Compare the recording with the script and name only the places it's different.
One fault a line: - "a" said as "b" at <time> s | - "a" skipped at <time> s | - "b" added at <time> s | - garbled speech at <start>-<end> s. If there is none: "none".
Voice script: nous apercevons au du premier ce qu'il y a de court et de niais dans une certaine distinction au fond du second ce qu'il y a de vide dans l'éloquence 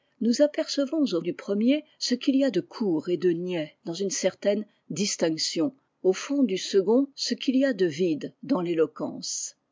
none